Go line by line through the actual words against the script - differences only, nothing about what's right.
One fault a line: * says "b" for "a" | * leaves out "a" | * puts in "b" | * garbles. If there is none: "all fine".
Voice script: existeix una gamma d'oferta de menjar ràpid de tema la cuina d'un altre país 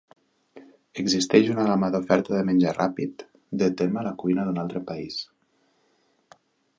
all fine